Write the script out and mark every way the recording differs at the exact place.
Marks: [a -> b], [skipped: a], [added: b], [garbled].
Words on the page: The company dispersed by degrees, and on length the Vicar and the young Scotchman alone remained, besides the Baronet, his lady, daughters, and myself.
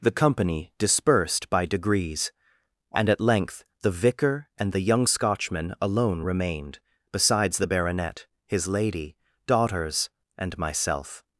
The company dispersed by degrees, and [on -> at] length the Vicar and the young Scotchman alone remained, besides the Baronet, his lady, daughters, and myself.